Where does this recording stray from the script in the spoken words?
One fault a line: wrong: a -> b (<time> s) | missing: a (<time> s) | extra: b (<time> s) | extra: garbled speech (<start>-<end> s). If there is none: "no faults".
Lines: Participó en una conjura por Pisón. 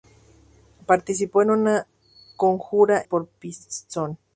no faults